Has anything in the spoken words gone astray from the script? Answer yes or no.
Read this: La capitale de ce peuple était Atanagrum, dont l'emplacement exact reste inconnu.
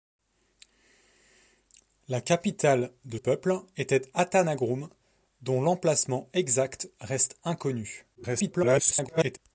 yes